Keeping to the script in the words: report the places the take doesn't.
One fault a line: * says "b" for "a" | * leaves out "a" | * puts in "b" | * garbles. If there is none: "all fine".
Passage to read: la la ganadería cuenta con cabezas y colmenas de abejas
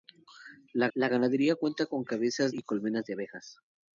all fine